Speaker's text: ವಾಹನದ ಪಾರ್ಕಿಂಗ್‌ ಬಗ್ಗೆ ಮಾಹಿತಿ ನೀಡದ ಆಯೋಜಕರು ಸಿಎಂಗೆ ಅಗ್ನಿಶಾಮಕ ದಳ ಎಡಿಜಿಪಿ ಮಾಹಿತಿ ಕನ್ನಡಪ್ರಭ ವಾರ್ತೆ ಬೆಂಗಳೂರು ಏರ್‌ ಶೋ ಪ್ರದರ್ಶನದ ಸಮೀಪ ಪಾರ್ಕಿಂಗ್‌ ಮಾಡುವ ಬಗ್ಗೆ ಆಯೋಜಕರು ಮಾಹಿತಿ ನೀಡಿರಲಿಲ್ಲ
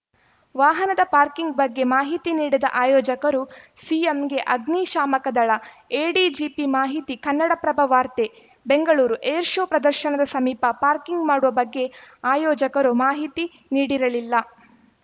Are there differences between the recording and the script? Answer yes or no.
no